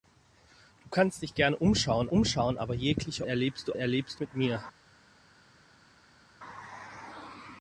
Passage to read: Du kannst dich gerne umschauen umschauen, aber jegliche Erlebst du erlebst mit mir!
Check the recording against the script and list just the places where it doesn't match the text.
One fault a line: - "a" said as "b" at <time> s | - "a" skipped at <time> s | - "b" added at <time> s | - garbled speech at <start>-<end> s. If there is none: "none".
none